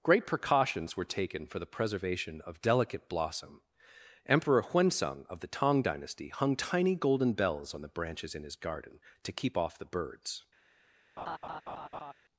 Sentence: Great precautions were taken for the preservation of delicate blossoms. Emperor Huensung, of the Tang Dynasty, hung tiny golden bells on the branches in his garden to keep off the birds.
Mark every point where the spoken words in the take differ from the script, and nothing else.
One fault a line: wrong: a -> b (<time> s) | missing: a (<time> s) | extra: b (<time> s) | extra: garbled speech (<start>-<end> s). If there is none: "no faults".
wrong: blossoms -> blossom (3.1 s)